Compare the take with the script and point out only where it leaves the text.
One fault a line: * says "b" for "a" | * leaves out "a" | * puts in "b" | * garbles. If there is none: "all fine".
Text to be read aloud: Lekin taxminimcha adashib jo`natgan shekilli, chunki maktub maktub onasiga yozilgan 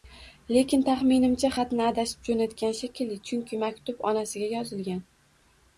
* puts in "xatni"
* leaves out "maktub"